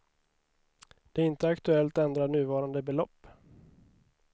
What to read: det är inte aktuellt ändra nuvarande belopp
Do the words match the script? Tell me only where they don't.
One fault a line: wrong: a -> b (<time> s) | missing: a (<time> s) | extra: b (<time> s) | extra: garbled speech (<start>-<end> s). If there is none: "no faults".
no faults